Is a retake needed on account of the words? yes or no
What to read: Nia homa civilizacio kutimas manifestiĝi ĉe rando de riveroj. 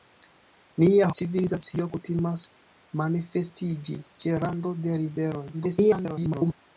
yes